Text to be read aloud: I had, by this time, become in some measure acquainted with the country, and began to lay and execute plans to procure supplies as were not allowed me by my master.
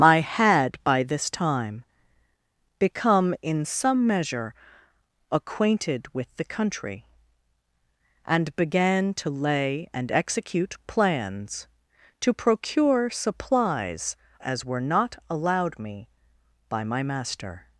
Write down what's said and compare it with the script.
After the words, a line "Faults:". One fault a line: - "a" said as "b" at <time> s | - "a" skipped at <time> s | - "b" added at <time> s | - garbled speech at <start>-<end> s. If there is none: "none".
I had, by this time, become in some measure acquainted with the country, and began to lay and execute plans to procure supplies as were not allowed me by my master.
Faults:
none